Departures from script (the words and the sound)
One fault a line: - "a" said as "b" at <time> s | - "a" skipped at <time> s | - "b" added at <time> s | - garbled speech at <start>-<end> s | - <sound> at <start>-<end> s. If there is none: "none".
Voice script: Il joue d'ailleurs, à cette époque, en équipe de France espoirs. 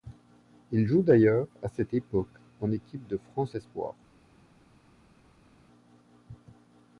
none